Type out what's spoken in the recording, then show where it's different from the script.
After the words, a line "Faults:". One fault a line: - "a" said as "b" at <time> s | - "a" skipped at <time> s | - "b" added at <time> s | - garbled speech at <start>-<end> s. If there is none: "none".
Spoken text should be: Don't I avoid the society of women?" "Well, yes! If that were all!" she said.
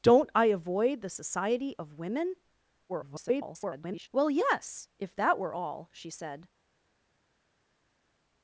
Don't I avoid the society of women?" [garbled] "Well, yes! If that were all!" she said.
Faults:
- garbled speech at 2.9-4.1 s